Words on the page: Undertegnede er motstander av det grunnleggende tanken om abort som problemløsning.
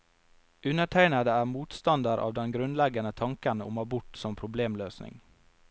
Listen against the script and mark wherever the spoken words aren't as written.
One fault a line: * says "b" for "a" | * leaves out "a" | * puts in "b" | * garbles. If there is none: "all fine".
* says "den" for "det"